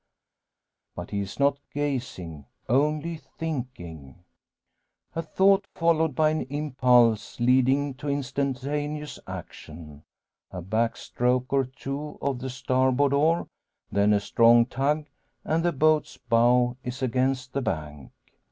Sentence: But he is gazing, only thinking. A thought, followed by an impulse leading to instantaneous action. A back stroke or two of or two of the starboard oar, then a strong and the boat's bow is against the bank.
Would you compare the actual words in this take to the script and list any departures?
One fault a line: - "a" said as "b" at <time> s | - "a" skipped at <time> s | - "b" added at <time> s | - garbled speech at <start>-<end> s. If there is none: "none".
- "not" added at 1.4 s
- "or two of" skipped at 12.4 s
- "tug" added at 14.6 s